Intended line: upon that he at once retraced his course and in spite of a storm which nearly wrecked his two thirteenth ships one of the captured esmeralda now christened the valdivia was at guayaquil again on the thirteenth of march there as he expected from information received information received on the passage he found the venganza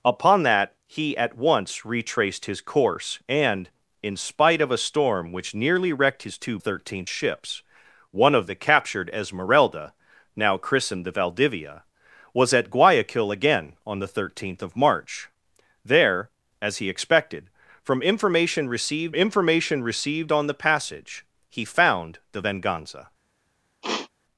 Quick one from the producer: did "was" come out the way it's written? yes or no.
yes